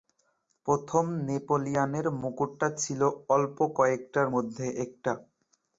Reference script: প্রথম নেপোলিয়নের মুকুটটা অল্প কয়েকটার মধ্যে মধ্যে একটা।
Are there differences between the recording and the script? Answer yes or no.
yes